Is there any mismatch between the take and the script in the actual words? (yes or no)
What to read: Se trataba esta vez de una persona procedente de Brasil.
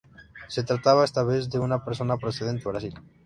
yes